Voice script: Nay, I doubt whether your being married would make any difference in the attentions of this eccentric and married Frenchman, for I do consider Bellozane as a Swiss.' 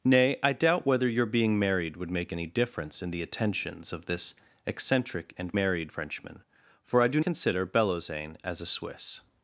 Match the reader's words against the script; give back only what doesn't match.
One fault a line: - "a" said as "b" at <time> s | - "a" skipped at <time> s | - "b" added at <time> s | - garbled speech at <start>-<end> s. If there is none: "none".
none